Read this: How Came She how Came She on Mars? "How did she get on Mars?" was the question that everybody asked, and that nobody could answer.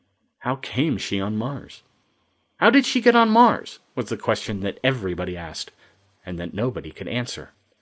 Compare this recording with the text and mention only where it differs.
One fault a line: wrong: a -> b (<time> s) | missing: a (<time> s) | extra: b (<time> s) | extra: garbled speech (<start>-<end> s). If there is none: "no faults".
missing: how Came She (1.2 s)